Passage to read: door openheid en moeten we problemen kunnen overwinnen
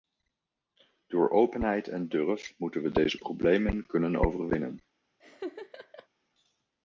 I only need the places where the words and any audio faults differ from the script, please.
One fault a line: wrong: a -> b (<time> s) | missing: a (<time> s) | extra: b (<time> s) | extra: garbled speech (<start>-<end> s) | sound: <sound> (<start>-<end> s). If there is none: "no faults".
extra: durf (2.1 s)
extra: deze (2.9 s)
sound: laugh (5.2-6.1 s)